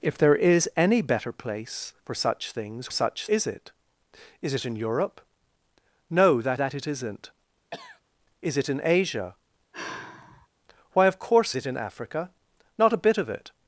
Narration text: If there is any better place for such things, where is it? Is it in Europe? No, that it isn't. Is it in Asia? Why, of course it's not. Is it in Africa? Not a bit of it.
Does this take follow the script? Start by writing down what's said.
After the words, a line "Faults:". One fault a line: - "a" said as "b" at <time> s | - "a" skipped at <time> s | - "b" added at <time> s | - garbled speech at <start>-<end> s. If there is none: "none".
If there is any better place for such things, such is it? Is it in Europe? No, that that it isn't. Is it in Asia? Why, of course it in Africa? Not a bit of it.
Faults:
- "where" said as "such" at 2.9 s
- "that" added at 6.5 s
- "it's not Is" skipped at 11.5 s